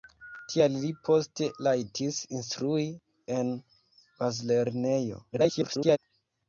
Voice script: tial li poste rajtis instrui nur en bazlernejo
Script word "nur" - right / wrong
wrong